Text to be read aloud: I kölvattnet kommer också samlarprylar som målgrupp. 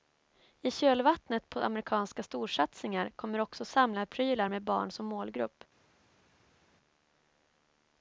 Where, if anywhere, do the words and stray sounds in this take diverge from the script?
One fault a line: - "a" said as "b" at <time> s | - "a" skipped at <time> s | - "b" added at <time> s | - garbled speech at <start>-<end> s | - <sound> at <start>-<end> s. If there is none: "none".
- "på amerikanska storsatsningar" added at 1.5 s
- "med barn" added at 4.5 s